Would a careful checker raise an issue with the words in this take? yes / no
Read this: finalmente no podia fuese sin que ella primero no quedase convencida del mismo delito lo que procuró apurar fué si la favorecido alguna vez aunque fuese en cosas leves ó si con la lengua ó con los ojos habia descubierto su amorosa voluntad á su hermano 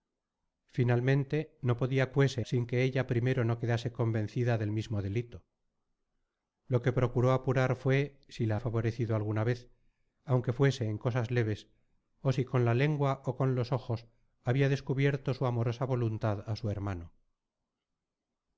no